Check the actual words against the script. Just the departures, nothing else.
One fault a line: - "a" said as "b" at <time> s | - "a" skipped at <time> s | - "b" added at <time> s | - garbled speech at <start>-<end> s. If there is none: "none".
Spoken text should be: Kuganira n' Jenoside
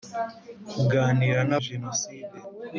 none